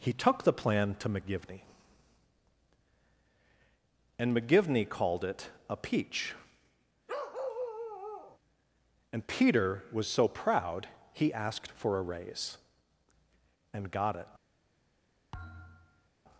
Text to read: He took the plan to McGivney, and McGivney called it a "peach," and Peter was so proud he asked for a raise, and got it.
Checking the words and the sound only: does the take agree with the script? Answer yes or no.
no